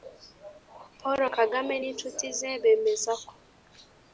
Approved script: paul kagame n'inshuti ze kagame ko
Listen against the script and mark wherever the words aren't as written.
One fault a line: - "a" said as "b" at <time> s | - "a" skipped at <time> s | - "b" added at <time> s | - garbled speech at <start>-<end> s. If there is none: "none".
- "kagame" said as "bemeza" at 2.6 s